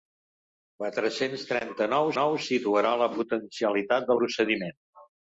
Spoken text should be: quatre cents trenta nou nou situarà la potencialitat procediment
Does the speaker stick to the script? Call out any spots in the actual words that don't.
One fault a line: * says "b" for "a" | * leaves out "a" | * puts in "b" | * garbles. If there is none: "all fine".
all fine